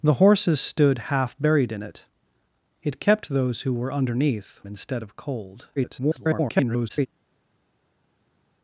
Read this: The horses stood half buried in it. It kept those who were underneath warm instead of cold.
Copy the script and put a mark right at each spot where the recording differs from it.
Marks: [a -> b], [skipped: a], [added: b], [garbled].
The horses stood half buried in it. It kept those who were underneath [skipped: warm] instead of cold. [garbled]